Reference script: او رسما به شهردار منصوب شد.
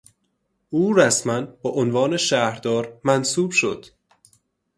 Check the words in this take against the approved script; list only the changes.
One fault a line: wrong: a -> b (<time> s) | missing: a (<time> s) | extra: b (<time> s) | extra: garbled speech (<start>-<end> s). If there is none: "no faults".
extra: عنوان (1.7 s)